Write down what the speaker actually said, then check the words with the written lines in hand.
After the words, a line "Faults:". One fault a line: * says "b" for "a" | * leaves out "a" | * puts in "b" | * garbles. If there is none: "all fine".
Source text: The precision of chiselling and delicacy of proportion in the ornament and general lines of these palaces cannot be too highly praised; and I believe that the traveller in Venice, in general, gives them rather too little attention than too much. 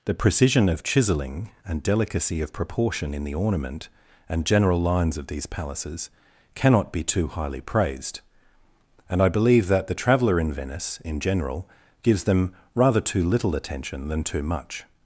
The precision of chiselling and delicacy of proportion in the ornament and general lines of these palaces cannot be too highly praised; and I believe that the traveller in Venice, in general, gives them rather too little attention than too much.
Faults:
all fine